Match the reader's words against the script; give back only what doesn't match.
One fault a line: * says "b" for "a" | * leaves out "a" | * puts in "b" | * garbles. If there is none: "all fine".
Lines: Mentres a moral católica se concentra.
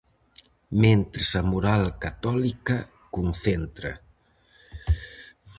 * leaves out "se"